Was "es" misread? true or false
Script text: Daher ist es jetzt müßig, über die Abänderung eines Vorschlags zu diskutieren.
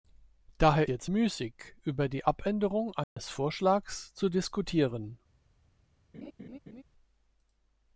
true